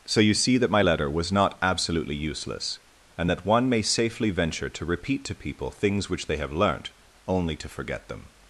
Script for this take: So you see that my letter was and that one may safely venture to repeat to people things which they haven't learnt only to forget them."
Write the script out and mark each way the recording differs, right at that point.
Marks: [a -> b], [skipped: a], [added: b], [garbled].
So you see that my letter was [added: not absolutely useless] and that one may safely venture to repeat to people things which they [haven't -> have] learnt only to forget them."